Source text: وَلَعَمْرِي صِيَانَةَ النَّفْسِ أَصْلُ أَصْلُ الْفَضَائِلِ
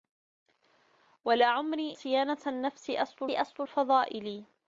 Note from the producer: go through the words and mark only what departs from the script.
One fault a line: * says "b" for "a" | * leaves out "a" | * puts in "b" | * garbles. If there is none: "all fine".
all fine